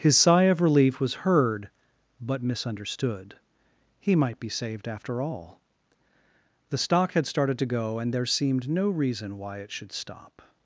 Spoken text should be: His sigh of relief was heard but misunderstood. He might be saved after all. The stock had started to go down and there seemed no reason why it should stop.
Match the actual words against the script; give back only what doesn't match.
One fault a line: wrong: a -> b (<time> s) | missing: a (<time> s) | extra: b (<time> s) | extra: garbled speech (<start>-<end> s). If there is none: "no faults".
missing: down (8.0 s)